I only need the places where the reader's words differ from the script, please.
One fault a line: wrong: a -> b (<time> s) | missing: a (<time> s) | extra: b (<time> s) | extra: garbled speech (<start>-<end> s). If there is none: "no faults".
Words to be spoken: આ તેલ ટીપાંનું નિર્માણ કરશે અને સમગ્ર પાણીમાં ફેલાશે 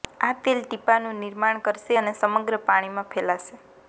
no faults